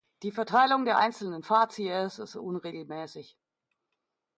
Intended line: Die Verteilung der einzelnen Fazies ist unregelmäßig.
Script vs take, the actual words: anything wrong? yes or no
no